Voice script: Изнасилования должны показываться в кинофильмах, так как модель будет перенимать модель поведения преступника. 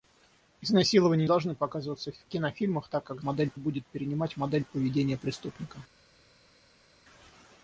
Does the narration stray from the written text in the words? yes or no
no